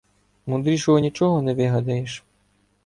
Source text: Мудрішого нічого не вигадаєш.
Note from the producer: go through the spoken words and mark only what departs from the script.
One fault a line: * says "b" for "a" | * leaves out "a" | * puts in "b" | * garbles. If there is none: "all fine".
all fine